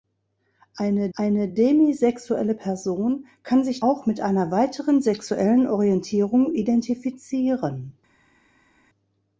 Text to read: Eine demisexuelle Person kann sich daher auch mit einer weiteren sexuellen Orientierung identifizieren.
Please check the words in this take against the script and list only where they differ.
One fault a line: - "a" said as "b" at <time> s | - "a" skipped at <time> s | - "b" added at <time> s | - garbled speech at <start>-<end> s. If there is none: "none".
- "eine" added at 1.1 s
- "daher" skipped at 3.8 s